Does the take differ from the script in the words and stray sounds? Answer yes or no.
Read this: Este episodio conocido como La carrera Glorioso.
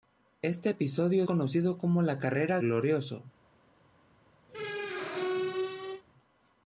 yes